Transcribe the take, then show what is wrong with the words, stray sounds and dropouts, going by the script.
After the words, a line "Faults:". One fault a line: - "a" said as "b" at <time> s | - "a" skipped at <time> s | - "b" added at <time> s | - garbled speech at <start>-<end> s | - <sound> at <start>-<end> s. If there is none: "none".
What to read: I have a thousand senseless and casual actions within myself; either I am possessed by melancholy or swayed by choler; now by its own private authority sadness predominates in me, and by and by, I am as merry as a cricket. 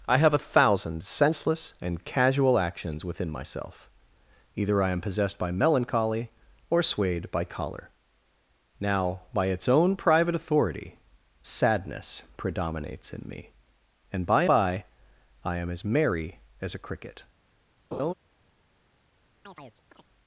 I have a thousand senseless and casual actions within myself; either I am possessed by melancholy or swayed by choler; now by its own private authority sadness predominates in me, and by by, I am as merry as a cricket.
Faults:
- "and" skipped at 14.4 s
- laugh at 17.9-18.1 s
- chirp at 19.5-20.1 s